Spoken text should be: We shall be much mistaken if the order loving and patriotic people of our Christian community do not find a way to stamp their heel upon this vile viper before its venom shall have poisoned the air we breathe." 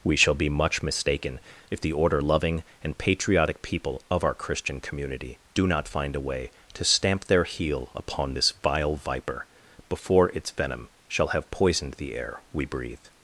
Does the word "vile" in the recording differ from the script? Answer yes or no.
no